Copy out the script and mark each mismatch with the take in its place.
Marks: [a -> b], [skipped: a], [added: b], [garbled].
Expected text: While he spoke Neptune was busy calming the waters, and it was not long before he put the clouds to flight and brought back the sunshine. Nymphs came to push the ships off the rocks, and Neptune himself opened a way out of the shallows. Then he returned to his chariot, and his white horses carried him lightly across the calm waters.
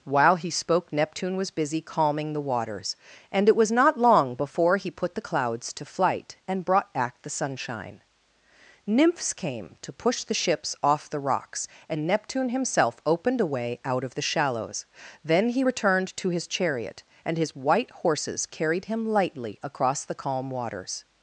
While he spoke Neptune was busy calming the waters, and it was not long before he put the clouds to flight and brought back the sunshine. Nymphs came to push the ships off the rocks, and Neptune himself opened a way out of the shallows. Then he returned to his chariot, and his white horses carried him lightly across the calm waters.